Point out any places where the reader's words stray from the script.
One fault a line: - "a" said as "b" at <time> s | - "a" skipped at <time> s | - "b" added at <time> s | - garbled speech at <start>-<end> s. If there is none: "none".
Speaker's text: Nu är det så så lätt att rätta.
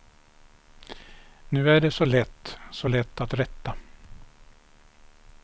- "lätt" added at 2.0 s